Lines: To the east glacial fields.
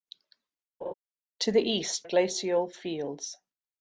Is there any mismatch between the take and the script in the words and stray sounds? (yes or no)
yes